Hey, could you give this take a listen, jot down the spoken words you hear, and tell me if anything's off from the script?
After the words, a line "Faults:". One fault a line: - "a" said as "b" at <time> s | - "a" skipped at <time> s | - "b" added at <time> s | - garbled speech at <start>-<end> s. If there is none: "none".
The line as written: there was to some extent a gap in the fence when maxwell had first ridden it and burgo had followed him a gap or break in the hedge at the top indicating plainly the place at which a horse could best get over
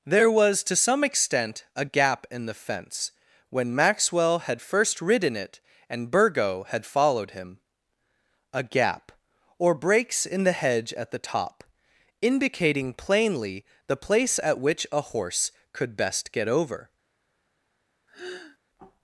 there was to some extent a gap in the fence when maxwell had first ridden it and burgo had followed him a gap or breaks in the hedge at the top indicating plainly the place at which a horse could best get over
Faults:
- "break" said as "breaks" at 9.7 s